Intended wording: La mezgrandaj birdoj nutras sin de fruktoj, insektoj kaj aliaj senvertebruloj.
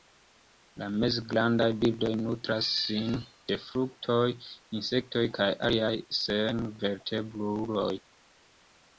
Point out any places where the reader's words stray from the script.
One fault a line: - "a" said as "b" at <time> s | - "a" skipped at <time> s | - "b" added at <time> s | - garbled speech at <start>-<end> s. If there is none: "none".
none